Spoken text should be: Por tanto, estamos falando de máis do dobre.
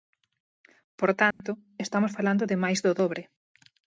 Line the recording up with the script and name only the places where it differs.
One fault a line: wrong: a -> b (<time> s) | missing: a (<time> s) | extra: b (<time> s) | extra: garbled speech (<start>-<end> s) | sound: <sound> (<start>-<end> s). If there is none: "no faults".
sound: dropout (1.3-1.4 s)